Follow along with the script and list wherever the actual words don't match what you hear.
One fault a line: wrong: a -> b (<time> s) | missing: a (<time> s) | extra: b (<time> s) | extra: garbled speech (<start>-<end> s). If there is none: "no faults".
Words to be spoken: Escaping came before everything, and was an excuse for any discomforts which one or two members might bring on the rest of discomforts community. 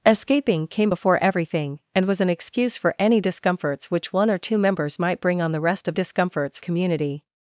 no faults